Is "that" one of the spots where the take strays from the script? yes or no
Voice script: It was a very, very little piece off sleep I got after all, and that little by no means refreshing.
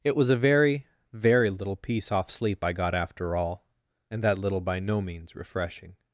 no